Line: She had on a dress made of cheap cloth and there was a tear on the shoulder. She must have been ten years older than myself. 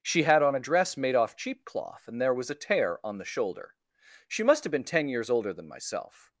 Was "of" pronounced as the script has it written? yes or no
no